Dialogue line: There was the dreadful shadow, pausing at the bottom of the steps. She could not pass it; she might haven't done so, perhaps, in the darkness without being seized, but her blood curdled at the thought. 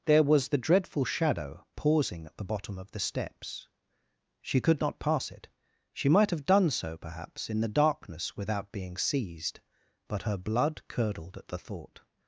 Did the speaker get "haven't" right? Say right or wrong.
wrong